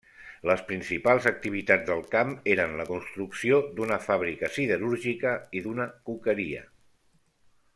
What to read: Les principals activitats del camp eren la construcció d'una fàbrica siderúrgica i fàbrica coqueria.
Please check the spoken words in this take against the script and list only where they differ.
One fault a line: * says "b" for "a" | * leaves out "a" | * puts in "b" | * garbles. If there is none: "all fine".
* says "d'una" for "fàbrica"